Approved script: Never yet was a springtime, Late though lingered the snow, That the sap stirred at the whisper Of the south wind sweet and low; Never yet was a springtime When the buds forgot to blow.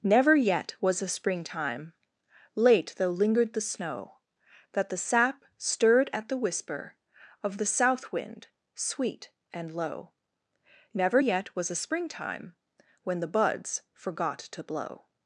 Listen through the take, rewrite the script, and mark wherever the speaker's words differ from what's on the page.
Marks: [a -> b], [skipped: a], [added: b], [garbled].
Never yet was a springtime, Late though lingered the snow, That the sap stirred at the whisper Of the south wind sweet and low; Never yet was a springtime When the buds forgot to blow.